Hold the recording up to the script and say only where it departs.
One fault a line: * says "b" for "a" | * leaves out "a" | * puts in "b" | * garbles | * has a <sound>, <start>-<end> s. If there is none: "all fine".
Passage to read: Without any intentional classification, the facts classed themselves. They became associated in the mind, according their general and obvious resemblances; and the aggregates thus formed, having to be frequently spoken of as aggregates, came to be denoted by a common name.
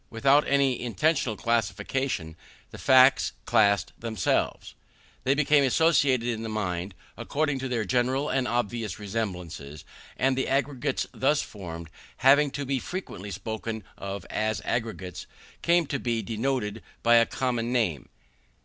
* puts in "to"